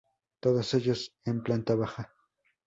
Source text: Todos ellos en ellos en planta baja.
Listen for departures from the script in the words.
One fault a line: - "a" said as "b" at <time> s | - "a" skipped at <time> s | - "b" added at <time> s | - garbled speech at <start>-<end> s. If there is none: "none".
- "ellos en" skipped at 1.4 s